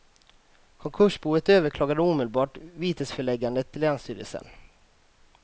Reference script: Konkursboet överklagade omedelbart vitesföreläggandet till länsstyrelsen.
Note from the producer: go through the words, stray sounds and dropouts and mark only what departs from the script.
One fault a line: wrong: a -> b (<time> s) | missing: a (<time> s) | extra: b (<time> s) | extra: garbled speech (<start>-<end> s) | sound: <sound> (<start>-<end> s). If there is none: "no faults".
no faults